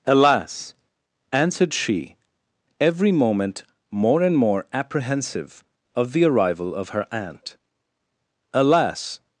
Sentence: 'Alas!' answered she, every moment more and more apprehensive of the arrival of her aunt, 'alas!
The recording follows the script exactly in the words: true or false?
true